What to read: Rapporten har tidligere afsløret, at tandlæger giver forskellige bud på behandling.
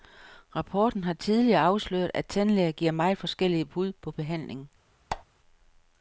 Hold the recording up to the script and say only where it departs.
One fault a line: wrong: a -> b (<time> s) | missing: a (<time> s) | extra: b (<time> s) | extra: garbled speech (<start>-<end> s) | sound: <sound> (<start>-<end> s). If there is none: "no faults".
extra: meget (2.9 s)
sound: squeak (5.1-5.2 s)